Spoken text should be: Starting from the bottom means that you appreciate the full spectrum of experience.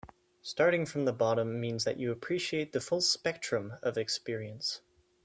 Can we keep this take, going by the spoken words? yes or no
yes